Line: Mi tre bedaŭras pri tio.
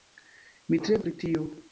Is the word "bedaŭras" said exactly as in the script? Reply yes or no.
no